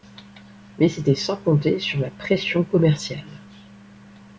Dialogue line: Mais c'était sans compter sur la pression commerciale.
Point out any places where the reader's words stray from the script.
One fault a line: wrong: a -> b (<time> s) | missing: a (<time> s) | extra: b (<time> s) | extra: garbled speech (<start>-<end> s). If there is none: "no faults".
no faults